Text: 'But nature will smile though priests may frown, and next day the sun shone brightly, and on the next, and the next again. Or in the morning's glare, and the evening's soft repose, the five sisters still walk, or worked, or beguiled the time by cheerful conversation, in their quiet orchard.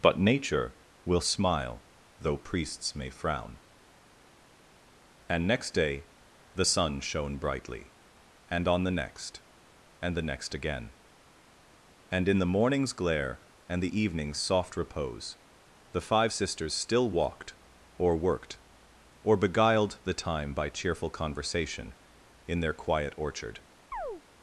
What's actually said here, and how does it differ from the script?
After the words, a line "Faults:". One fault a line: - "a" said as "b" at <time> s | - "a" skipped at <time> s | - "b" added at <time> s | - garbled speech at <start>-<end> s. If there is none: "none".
'But nature will smile though priests may frown, and next day the sun shone brightly, and on the next, and the next again. And in the morning's glare, and the evening's soft repose, the five sisters still walked, or worked, or beguiled the time by cheerful conversation, in their quiet orchard.
Faults:
- "Or" said as "And" at 12.1 s
- "walk" said as "walked" at 17.1 s